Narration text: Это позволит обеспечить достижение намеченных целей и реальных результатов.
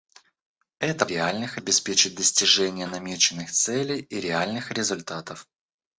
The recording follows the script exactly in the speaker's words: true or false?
false